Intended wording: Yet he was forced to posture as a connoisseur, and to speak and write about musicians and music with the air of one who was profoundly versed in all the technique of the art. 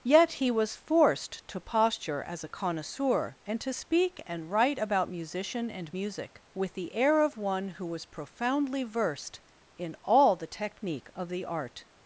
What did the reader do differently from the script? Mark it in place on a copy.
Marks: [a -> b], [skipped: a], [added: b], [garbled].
Yet he was forced to posture as a connoisseur, and to speak and write about [musicians -> musician] and music with the air of one who was profoundly versed in all the technique of the art.